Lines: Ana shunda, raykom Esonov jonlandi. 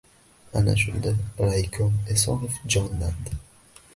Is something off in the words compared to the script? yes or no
no